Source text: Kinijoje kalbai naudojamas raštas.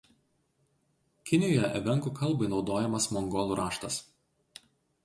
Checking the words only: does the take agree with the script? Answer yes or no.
no